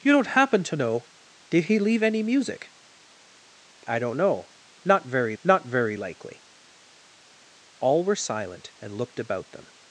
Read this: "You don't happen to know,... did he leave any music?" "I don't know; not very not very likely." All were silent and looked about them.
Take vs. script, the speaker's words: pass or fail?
pass